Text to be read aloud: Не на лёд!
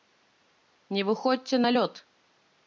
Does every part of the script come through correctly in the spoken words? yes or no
no